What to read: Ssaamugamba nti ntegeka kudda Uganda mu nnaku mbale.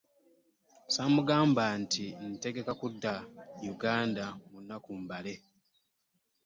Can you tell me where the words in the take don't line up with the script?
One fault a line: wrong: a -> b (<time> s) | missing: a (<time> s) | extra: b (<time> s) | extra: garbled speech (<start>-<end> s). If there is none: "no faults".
no faults